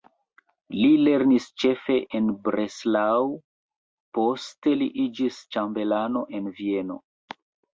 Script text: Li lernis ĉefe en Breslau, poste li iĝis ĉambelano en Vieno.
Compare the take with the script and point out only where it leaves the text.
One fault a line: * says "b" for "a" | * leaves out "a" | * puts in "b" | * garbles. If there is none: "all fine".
all fine